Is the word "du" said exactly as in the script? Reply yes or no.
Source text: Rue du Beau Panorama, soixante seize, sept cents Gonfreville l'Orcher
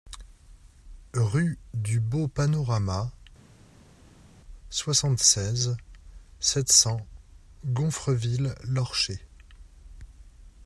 yes